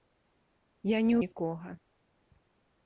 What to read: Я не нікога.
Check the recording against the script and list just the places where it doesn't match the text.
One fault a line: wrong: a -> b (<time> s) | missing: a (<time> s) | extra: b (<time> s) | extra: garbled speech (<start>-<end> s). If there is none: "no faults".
no faults